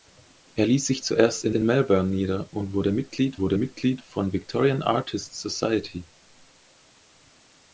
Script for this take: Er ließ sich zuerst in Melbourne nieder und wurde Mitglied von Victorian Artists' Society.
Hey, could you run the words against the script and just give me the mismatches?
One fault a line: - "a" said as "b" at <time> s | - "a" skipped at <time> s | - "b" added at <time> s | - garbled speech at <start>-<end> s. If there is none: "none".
- "in" added at 1.5 s
- "wurde Mitglied" added at 3.4 s